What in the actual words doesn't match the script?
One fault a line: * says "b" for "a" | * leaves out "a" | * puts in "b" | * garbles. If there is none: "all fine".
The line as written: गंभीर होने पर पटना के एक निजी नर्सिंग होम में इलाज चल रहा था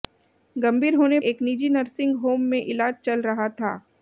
* leaves out "पर पटना के"